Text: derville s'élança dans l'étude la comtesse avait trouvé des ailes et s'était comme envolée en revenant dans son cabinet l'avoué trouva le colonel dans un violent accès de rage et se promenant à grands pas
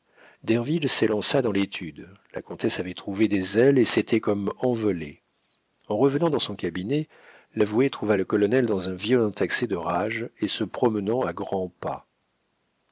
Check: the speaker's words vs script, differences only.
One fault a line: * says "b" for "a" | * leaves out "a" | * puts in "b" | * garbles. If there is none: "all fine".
all fine